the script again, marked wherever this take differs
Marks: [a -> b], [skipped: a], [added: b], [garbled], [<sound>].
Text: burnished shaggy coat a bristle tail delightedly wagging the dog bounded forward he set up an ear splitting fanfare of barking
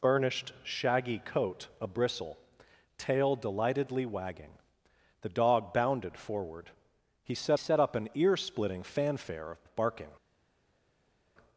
burnished shaggy coat a bristle tail delightedly wagging the dog bounded forward he set [added: set] up an ear splitting fanfare of [added: of] barking